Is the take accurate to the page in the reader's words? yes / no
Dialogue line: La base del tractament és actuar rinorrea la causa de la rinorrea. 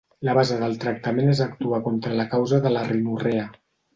no